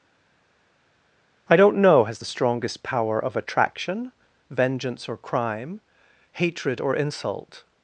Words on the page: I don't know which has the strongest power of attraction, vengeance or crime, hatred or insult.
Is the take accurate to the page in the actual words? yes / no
no